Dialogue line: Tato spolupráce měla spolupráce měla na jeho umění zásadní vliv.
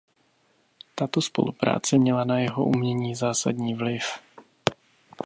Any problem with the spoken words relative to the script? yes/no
yes